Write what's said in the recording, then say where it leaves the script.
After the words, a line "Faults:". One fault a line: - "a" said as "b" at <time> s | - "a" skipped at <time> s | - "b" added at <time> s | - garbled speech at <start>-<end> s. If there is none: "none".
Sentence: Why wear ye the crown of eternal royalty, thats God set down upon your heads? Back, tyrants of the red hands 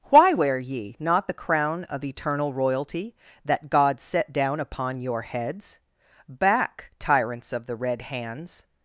Why wear ye not the crown of eternal royalty, that God set down upon your heads? Back, tyrants of the red hands
Faults:
- "not" added at 1.0 s
- "thats" said as "that" at 3.4 s